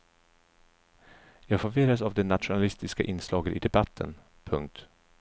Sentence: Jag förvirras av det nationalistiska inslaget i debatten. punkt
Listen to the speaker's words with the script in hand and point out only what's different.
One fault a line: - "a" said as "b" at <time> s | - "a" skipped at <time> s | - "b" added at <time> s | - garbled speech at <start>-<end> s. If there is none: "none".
none